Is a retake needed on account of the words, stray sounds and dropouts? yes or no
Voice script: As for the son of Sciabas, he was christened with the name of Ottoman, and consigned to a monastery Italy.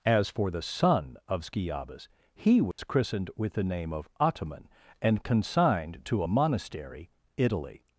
yes